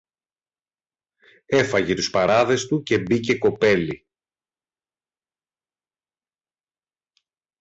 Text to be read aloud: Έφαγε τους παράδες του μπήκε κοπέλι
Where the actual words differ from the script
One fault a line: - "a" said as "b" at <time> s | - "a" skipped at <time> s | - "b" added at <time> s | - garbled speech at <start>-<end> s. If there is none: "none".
- "και" added at 2.8 s